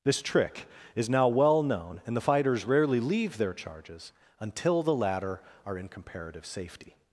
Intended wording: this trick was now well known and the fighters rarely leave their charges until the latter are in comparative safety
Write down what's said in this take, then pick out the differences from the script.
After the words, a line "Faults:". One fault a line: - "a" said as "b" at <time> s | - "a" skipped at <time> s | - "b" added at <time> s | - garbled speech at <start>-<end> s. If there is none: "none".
this trick is now well known and the fighters rarely leave their charges until the latter are in comparative safety
Faults:
- "was" said as "is" at 0.9 s